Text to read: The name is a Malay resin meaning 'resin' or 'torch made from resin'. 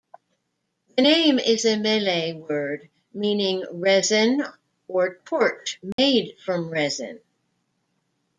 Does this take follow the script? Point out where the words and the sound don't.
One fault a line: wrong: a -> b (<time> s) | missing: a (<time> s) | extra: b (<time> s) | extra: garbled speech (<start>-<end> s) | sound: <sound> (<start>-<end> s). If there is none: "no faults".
wrong: resin -> word (2.3 s)
sound: dropout (5.9-6.0 s)